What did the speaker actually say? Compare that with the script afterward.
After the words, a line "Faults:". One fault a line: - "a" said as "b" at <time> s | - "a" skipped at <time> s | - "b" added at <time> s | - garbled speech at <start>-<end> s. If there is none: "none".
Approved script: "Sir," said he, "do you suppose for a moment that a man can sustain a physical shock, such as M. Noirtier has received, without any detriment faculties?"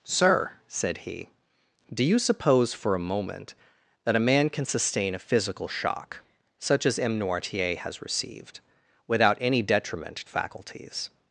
"Sir," said he, "do you suppose for a moment that a man can sustain a physical shock, such as M. Noirtier has received, without any detriment faculties?"
Faults:
none